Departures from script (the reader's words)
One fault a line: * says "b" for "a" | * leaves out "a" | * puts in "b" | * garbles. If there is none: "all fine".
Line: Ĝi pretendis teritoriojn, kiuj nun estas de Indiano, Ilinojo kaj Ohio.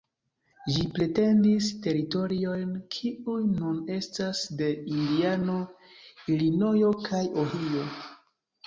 all fine